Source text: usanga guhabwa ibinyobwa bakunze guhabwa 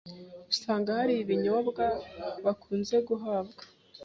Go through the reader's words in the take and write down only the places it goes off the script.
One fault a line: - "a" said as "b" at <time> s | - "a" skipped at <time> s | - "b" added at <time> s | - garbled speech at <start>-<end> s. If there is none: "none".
- "guhabwa" said as "hari" at 1.0 s